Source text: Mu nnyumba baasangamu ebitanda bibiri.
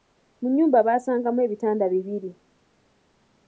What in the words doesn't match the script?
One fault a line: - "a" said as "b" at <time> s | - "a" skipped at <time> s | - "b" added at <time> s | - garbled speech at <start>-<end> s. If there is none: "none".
none